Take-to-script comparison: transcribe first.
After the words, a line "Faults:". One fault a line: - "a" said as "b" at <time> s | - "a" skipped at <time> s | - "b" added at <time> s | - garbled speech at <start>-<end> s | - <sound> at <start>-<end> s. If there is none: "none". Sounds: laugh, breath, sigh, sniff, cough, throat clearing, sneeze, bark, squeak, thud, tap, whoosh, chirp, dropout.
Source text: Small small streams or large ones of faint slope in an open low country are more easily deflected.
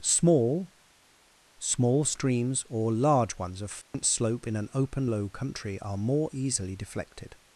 Small small streams or large ones of faint slope in an open low country are more easily deflected.
Faults:
- dropout at 3.8-3.9 s